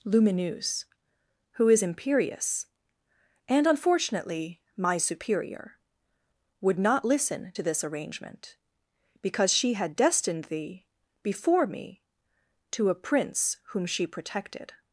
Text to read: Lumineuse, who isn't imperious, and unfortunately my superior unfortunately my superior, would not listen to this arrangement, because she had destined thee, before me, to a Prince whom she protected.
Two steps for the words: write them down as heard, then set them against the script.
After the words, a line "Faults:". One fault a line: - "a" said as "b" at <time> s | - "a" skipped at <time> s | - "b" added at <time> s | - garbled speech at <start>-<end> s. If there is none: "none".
Lumineuse, who is imperious, and unfortunately my superior, would not listen to this arrangement, because she had destined thee, before me, to a Prince whom she protected.
Faults:
- "isn't" said as "is" at 1.7 s
- "unfortunately my superior" skipped at 5.8 s